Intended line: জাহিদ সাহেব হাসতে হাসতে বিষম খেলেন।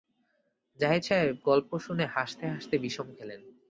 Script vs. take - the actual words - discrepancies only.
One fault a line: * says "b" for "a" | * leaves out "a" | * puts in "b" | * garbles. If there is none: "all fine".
* puts in "গল্প শুনে"